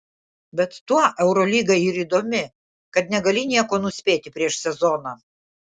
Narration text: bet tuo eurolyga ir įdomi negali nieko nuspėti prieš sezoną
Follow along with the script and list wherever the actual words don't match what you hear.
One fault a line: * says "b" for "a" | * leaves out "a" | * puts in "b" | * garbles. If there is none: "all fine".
* puts in "kad"